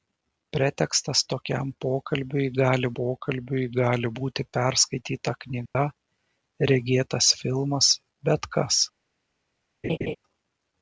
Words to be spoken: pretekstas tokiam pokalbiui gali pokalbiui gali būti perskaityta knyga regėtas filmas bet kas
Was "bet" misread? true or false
false